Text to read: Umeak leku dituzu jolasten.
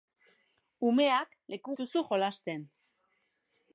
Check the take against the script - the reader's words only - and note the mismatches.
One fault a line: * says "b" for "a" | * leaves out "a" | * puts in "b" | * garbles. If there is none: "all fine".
all fine